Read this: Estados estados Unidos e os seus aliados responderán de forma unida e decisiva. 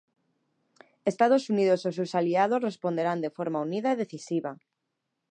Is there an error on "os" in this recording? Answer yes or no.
no